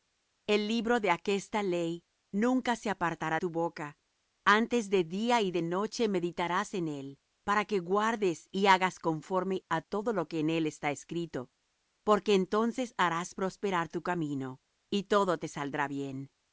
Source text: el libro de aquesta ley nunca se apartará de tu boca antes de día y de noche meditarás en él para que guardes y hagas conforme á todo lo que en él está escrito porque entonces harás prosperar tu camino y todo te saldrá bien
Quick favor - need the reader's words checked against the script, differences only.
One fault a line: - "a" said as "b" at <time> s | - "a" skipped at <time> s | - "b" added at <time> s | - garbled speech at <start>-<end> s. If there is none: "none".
- "de" skipped at 3.4 s